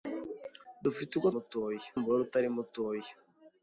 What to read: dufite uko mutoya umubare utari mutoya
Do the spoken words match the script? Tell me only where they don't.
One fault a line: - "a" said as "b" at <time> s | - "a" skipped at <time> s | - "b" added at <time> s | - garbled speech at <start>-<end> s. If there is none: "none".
none